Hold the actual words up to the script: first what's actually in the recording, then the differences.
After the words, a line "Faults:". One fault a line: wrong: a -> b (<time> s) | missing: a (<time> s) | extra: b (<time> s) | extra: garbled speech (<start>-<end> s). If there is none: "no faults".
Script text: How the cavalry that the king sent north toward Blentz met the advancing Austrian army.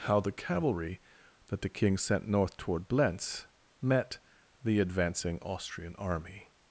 How the cavalry that the king sent north toward Blentz met the advancing Austrian army.
Faults:
no faults